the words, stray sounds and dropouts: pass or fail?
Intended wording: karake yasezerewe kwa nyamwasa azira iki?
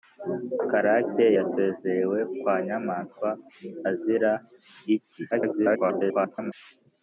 fail